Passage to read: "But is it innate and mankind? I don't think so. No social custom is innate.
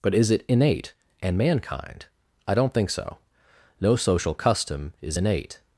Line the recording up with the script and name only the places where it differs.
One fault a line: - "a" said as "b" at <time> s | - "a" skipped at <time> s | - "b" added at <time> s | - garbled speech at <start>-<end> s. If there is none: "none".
none